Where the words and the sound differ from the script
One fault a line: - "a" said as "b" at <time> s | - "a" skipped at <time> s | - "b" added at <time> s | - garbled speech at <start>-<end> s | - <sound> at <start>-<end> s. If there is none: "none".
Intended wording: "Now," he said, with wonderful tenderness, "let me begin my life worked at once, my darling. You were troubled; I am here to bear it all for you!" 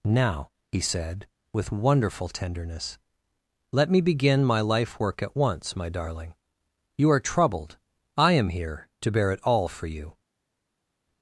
- "worked" said as "work" at 5.0 s
- "were" said as "are" at 7.1 s